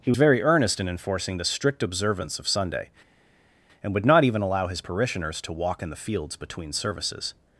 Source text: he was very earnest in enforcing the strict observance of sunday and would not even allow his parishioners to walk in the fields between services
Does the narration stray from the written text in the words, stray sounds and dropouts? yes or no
yes